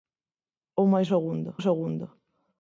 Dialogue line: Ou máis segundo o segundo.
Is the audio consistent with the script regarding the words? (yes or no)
yes